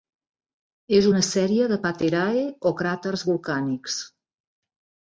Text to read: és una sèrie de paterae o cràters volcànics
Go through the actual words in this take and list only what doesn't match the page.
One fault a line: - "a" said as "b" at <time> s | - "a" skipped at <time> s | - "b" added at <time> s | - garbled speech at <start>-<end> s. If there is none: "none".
none